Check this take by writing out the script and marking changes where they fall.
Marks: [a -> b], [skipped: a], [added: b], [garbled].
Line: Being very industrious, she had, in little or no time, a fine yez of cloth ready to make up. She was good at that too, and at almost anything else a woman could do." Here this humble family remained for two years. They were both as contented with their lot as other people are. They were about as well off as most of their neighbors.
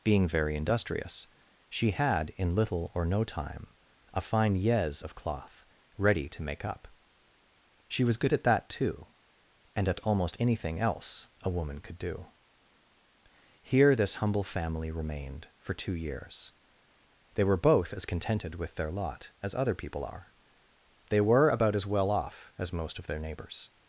Being very industrious, she had, in little or no time, a fine yez of cloth ready to make up. She was good at that too, and at almost anything else a woman could do." Here this humble family remained for two years. They were both as contented with their lot as other people are. They were about as well off as most of their neighbors.